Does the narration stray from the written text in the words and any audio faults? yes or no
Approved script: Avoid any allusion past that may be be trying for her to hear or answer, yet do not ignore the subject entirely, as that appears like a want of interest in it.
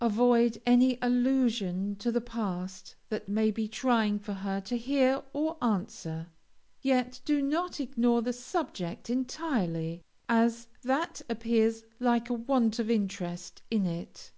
yes